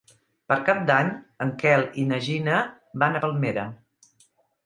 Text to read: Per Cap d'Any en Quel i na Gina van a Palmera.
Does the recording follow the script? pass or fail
pass